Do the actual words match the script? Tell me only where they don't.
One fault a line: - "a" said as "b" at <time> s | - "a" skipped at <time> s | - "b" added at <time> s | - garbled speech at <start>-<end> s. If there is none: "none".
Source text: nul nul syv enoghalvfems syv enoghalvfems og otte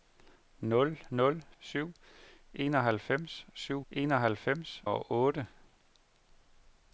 none